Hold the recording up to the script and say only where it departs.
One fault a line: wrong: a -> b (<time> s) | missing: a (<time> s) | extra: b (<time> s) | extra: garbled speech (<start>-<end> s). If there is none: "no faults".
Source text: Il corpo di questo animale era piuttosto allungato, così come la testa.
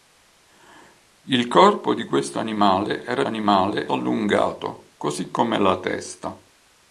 wrong: piuttosto -> animale (3.3 s)